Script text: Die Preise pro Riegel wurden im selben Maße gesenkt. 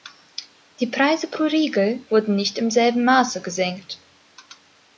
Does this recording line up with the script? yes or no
no